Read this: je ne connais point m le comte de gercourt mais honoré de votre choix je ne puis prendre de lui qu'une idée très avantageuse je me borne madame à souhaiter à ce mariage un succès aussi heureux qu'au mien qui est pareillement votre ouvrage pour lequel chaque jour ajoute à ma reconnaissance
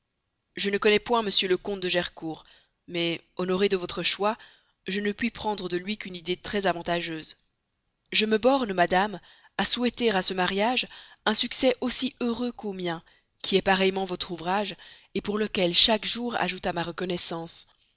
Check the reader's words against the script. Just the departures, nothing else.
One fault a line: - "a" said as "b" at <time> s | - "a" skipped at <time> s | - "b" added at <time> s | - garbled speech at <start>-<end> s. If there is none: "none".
none